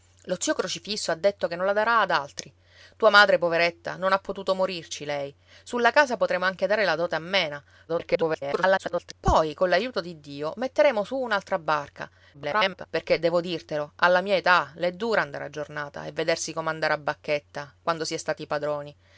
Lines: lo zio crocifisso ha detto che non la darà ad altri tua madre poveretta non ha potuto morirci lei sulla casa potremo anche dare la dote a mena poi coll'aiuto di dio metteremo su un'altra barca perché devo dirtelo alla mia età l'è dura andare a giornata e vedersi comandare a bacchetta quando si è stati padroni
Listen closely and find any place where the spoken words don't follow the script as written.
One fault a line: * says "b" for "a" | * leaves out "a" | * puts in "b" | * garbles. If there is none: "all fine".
* garbles
* garbles